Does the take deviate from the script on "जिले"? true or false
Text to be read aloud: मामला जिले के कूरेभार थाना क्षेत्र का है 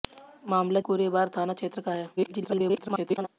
true